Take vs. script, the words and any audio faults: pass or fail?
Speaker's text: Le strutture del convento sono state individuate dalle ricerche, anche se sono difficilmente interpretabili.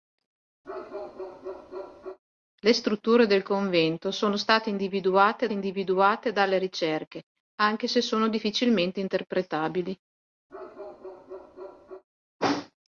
fail